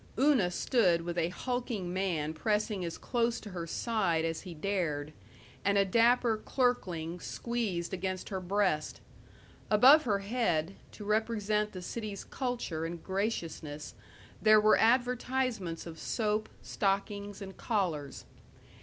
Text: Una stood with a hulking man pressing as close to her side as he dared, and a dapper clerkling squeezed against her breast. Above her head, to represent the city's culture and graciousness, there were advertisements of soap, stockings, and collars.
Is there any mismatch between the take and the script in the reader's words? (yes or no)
no